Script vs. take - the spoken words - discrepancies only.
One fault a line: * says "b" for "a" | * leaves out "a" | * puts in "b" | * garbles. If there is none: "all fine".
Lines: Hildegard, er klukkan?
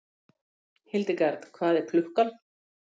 * puts in "hvað"